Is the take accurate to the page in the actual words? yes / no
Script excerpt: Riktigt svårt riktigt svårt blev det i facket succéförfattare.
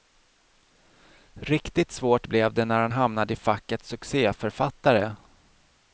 no